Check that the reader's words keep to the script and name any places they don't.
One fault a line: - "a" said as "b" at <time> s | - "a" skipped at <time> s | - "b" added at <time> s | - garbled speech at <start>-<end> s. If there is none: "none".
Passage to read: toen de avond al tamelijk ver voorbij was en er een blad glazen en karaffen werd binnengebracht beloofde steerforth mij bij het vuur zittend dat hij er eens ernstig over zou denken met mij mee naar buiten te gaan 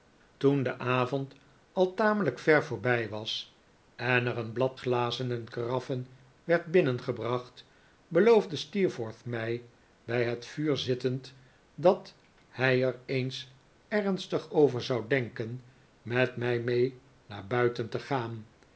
none